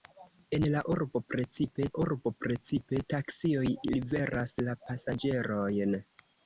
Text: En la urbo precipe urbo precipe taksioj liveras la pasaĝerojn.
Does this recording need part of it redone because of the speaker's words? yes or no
no